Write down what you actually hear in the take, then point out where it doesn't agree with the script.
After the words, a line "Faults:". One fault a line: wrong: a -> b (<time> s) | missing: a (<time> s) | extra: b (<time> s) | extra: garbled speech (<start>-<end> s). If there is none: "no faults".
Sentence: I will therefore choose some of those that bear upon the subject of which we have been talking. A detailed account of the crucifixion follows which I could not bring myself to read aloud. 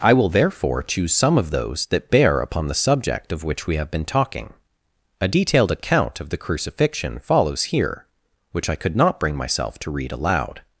I will therefore choose some of those that bear upon the subject of which we have been talking. A detailed account of the crucifixion follows here, which I could not bring myself to read aloud.
Faults:
extra: here (7.7 s)